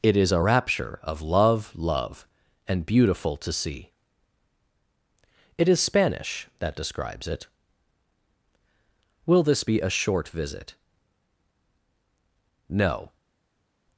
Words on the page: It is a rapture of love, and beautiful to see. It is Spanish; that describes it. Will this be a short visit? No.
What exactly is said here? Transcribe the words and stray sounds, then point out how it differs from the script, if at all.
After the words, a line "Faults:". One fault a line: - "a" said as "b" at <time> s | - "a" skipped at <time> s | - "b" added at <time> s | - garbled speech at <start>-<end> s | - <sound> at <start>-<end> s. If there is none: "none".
It is a rapture of love love, and beautiful to see. It is Spanish; that describes it. Will this be a short visit? No.
Faults:
- "love" added at 1.7 s